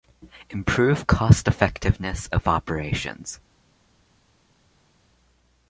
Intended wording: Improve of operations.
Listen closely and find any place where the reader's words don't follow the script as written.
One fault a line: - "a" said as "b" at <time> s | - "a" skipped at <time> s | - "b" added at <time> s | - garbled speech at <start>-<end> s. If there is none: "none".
- "cost effectiveness" added at 1.1 s